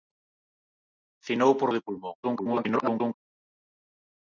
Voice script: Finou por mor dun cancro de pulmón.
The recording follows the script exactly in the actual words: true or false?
false